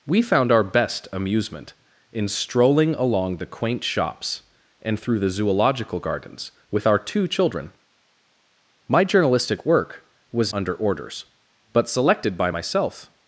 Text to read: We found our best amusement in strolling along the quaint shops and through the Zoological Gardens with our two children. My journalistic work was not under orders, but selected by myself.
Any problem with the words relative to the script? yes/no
yes